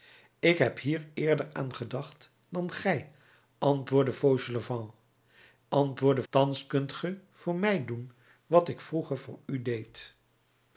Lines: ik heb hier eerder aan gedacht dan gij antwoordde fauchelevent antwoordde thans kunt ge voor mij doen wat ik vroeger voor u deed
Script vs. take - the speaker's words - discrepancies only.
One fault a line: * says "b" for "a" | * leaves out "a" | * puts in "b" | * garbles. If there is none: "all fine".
all fine